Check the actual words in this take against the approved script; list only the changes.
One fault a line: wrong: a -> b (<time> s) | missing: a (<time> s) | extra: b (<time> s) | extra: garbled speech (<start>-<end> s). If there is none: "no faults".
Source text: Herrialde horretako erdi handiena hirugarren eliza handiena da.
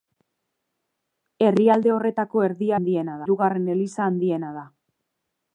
no faults